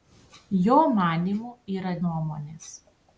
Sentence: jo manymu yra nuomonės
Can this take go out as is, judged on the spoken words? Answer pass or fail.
pass